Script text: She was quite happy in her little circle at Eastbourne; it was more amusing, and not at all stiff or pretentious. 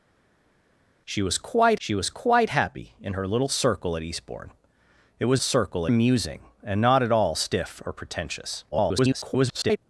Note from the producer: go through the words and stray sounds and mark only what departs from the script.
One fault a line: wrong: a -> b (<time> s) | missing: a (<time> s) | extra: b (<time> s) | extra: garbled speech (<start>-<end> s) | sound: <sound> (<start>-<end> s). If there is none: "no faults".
extra: she was quite (1.8 s)
wrong: more -> circle (5.4 s)
extra: garbled speech (8.7-9.8 s)